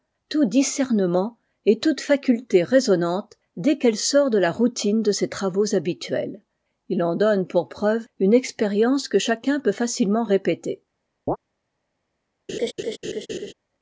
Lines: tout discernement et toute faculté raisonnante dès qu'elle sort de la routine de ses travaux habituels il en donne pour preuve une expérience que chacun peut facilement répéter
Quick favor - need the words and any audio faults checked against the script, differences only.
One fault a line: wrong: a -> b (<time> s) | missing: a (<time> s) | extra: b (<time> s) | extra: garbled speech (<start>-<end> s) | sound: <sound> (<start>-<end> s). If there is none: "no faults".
sound: chirp (11.3-11.4 s)
sound: laugh (12.5-13.5 s)